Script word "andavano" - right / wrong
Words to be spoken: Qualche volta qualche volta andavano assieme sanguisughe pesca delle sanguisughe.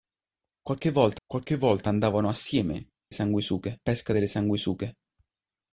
right